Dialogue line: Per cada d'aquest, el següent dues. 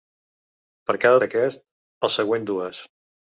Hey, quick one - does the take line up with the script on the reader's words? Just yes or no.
yes